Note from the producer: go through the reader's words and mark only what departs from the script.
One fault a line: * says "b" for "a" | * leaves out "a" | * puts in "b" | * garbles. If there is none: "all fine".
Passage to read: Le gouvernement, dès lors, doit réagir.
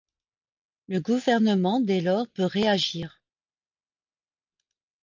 * says "peut" for "doit"